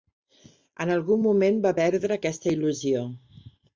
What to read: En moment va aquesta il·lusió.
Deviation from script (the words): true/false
true